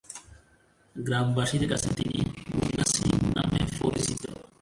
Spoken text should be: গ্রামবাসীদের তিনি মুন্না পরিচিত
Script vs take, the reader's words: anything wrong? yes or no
yes